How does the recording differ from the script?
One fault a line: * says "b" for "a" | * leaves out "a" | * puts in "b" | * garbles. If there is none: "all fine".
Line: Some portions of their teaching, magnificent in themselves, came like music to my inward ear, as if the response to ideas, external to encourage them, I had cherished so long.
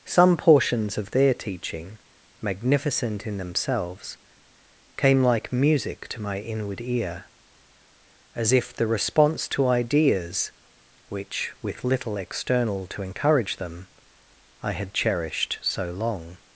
* puts in "which with little"